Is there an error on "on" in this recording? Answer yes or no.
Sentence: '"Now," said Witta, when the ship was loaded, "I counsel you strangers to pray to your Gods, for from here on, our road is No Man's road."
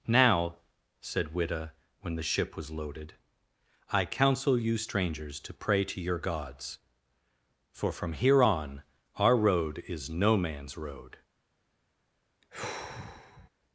no